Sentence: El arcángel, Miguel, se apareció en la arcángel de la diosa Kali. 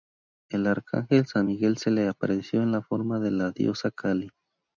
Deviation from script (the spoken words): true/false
true